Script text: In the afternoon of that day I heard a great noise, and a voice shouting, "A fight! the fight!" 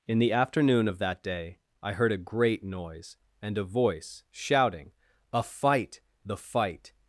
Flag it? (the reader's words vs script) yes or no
no